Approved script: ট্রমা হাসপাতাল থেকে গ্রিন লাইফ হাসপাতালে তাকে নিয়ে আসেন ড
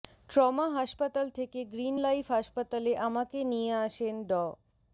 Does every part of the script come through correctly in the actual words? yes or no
no